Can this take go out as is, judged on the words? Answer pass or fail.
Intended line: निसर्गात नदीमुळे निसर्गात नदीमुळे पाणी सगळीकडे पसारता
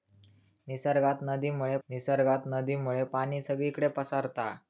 pass